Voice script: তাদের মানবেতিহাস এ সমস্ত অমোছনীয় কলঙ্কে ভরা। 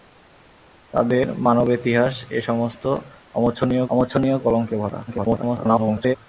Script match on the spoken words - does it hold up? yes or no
no